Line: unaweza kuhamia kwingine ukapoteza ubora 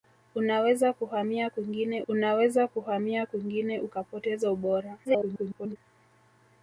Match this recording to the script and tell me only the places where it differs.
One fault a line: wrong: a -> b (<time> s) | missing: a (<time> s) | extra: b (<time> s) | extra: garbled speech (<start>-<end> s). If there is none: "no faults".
extra: unaweza kuhamia kwingine (2.1 s)
extra: garbled speech (5.0-5.8 s)